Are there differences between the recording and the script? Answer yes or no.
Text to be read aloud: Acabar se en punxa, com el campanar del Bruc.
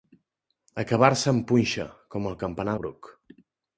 yes